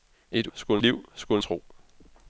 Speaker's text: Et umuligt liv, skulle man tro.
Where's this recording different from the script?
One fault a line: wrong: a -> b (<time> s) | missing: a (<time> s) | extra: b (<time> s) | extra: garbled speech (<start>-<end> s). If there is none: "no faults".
wrong: umuligt -> skulle (0.5 s)
missing: man (1.4 s)